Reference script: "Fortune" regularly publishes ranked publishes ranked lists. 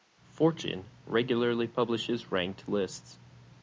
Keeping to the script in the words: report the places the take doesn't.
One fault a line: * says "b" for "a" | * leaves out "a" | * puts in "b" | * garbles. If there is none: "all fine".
* leaves out "publishes ranked"